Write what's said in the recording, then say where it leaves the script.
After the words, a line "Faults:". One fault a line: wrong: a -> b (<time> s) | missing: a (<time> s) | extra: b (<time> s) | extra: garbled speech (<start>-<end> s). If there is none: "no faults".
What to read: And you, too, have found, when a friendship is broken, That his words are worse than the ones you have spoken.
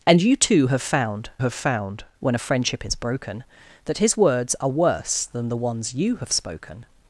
And you, too, have found have found, when a friendship is broken, That his words are worse than the ones you have spoken.
Faults:
extra: have found (1.4 s)